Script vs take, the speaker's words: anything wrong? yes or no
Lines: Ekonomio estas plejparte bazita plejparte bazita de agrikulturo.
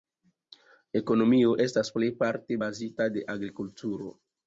yes